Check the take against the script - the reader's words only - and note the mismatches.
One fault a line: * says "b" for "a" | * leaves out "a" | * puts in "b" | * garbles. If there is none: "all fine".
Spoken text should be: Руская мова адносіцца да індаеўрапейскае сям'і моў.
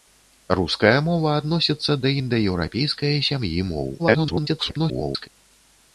* garbles